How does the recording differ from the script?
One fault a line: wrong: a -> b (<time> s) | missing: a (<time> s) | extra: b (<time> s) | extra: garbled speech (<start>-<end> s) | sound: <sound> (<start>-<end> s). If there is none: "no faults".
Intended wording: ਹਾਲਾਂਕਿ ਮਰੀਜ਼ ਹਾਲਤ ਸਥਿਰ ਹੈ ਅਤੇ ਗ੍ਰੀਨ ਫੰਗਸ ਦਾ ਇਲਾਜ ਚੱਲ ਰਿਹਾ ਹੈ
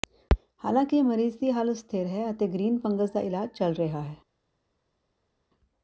extra: ਦੀ (1.4 s)